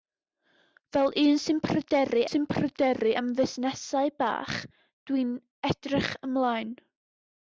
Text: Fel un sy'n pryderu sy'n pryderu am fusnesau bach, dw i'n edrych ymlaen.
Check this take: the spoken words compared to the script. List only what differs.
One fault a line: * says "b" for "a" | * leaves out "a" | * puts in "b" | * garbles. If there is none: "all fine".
all fine